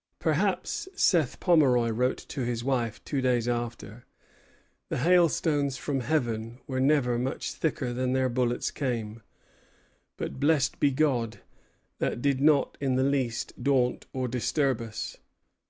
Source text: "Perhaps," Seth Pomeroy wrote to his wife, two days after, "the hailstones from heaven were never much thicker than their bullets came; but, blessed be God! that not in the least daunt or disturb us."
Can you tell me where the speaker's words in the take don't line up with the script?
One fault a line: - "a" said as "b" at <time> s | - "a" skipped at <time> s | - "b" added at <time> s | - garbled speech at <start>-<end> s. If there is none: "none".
- "did" added at 12.2 s